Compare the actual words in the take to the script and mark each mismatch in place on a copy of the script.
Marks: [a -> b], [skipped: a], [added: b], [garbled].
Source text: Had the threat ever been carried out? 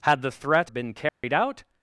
Had the threat [skipped: ever] been carried out?